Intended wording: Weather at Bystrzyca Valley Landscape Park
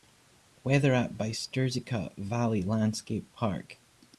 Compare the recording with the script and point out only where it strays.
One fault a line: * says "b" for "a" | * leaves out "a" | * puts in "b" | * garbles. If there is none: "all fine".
all fine